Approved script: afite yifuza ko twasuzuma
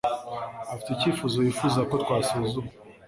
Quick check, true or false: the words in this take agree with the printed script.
false